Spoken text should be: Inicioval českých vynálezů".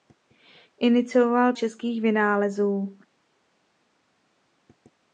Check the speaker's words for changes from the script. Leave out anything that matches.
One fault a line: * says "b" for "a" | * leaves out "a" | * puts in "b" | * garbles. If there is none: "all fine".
all fine